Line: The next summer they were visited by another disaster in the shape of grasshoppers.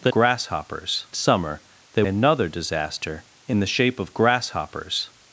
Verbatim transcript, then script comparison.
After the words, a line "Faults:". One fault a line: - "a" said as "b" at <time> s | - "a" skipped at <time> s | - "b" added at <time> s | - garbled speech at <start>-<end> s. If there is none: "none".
The grasshoppers summer they another disaster in the shape of grasshoppers.
Faults:
- "next" said as "grasshoppers" at 0.1 s
- "were visited by" skipped at 2.0 s